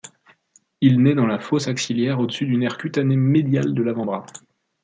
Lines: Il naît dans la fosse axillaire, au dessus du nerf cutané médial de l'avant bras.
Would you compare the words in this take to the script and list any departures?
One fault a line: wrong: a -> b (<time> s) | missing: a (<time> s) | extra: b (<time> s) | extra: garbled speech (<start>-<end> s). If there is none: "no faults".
no faults